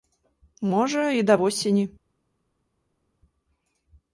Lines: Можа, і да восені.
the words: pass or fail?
pass